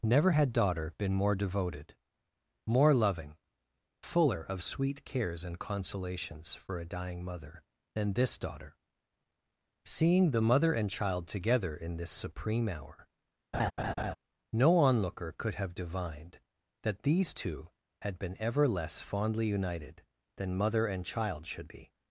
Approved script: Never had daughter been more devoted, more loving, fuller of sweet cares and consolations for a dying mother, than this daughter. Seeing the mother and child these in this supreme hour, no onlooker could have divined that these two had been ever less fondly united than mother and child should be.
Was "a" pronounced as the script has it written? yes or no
yes